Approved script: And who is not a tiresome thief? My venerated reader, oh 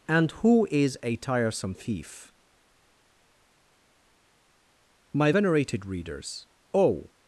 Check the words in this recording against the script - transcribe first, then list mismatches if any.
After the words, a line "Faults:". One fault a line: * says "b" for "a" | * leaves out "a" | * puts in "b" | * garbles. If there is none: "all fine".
And who is a tiresome thief? My venerated readers, oh
Faults:
* leaves out "not"
* says "readers" for "reader"